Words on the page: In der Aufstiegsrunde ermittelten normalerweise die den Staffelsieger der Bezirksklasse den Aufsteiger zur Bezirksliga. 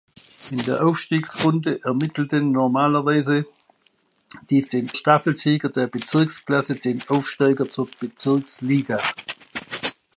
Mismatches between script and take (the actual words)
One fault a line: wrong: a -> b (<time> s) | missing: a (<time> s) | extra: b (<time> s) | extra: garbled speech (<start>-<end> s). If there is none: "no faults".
no faults